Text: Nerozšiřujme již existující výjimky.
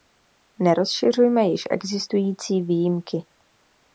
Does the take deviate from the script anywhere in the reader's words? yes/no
no